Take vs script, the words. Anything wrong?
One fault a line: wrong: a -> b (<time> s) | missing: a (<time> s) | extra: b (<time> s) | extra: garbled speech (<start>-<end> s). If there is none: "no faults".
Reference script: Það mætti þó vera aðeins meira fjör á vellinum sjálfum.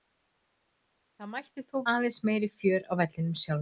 missing: vera (1.8 s)